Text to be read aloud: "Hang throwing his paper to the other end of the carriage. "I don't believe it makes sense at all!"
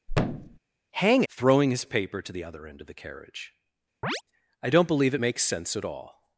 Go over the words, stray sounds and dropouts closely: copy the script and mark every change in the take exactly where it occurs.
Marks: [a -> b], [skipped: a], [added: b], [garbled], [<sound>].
[thud] "Hang throwing his paper to the other end of the carriage. [chirp] "I don't believe it makes sense at all!"